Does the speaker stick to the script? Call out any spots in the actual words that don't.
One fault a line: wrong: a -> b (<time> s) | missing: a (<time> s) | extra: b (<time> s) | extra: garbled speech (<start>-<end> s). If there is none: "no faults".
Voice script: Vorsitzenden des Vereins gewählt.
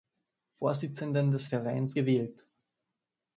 no faults